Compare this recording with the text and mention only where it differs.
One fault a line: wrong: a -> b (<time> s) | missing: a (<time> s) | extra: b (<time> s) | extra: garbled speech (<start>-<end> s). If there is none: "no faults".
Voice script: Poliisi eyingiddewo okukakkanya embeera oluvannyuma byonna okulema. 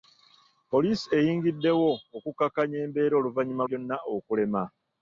no faults